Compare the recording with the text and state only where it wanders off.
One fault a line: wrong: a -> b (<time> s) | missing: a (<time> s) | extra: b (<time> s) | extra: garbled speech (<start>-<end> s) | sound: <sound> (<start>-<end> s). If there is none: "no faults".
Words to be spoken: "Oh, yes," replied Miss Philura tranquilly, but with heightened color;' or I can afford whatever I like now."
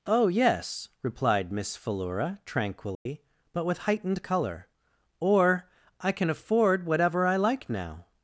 sound: dropout (2.9-3.1 s)